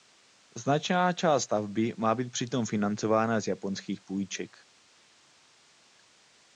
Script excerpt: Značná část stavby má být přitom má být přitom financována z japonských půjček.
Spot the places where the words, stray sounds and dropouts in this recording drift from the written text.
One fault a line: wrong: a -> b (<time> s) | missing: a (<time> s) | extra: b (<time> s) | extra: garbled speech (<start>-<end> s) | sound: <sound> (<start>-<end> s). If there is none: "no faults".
missing: má být přitom (2.7 s)